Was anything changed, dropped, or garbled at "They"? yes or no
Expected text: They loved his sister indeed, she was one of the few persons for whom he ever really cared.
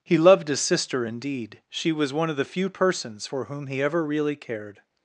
yes